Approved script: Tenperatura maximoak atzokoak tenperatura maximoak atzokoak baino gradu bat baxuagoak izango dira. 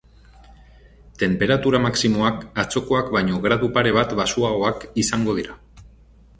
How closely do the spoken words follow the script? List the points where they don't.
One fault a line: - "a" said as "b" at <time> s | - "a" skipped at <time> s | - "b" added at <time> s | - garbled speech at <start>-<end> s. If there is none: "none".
- "tenperatura maximoak atzokoak" skipped at 3.1 s
- "pare" added at 3.8 s